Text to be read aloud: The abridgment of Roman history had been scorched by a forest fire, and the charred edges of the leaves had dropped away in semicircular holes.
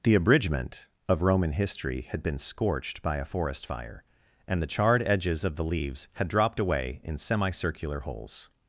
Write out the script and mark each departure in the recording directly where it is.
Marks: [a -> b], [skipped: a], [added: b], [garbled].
The abridgment of Roman history had been scorched by a forest fire, and the charred edges of the leaves had dropped away in semicircular holes.